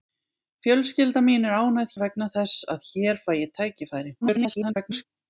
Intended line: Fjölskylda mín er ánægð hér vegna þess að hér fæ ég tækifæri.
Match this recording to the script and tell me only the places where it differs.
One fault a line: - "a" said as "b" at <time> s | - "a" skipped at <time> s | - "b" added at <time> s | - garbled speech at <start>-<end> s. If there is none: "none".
- "hér" skipped at 1.9 s
- garbled speech at 4.2-5.0 s